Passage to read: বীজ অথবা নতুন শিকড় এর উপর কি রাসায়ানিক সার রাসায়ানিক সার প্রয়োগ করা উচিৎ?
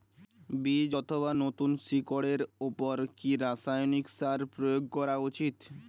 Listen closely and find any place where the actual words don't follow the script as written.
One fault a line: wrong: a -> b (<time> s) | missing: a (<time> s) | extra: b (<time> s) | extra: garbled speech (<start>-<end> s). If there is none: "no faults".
missing: রাসায়ানিক সার (4.4 s)